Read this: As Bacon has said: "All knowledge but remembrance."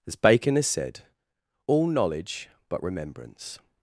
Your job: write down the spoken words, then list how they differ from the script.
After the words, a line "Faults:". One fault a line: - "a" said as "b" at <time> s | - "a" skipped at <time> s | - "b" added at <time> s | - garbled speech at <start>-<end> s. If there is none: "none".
As Bacon has said: "All knowledge but remembrance."
Faults:
none